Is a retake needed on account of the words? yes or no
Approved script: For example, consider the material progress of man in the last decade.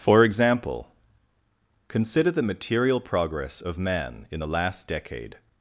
no